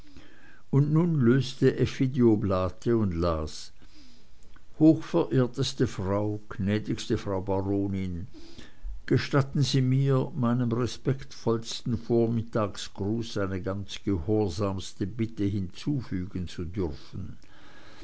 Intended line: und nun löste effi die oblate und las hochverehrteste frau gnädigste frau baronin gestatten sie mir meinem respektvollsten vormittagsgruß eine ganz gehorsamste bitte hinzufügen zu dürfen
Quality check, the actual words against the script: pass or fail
pass